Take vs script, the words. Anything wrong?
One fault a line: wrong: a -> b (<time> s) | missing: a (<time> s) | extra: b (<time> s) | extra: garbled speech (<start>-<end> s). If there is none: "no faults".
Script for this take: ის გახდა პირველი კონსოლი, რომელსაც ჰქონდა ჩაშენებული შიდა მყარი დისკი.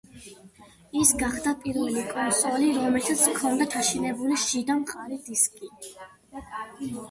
no faults